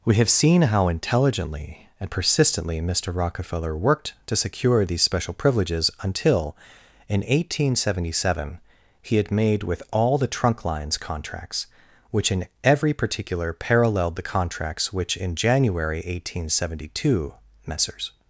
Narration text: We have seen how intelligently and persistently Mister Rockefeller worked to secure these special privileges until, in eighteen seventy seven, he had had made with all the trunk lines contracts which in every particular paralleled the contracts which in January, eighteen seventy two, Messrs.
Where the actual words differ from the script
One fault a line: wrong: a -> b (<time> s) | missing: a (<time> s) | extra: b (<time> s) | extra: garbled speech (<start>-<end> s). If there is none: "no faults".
missing: had (9.3 s)